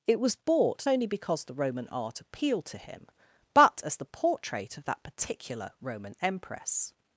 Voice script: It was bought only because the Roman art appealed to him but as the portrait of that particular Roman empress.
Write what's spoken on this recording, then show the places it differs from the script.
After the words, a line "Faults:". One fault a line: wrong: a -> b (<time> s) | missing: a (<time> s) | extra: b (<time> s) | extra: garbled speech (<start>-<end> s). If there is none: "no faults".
It was bought only because the Roman art appealed to him but as the portrait of that particular Roman empress.
Faults:
no faults